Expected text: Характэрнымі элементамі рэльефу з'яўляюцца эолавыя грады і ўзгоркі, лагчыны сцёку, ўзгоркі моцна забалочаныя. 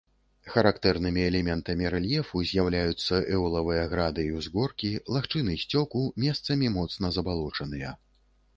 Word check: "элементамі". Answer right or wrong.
right